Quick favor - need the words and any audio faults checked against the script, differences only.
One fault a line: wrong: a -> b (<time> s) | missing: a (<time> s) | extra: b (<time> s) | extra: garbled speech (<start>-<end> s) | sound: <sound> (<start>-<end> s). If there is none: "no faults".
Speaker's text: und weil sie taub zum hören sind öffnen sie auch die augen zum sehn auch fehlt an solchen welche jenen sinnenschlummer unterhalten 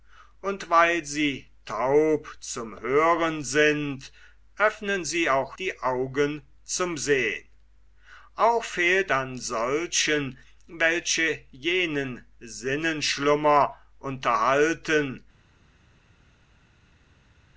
no faults